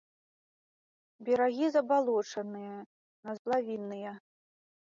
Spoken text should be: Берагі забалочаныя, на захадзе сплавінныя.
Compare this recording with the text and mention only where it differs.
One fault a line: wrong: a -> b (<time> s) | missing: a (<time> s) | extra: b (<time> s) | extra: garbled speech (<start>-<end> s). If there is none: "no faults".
missing: захадзе (3.4 s)